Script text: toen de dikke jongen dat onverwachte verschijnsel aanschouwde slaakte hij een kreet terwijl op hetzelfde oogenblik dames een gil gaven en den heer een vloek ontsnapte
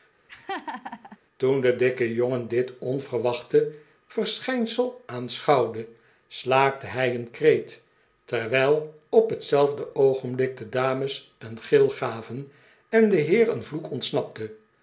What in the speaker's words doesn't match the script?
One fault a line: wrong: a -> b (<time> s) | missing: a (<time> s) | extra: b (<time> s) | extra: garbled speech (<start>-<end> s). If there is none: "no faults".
wrong: dat -> dit (2.5 s)
extra: de (10.6 s)